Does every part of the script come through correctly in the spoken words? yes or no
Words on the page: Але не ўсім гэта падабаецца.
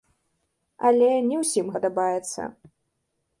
no